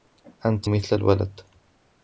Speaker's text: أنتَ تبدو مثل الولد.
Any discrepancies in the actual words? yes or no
yes